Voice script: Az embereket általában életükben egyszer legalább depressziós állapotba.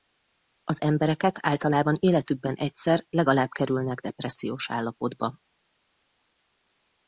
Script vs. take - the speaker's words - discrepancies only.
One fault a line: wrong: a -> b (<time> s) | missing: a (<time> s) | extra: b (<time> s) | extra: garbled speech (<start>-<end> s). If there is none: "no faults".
extra: kerülnek (3.5 s)